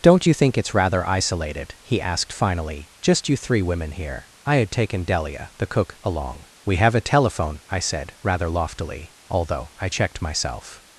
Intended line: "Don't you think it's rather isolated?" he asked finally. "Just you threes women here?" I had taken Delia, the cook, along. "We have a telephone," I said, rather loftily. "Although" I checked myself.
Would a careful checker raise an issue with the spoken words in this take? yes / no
yes